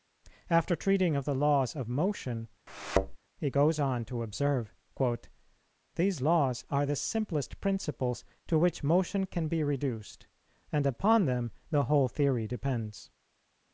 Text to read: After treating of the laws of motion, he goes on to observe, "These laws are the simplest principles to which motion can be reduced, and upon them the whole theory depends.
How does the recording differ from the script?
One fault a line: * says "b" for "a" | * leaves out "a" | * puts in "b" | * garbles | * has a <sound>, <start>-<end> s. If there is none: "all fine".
* has a thud, 2.7-3.2 s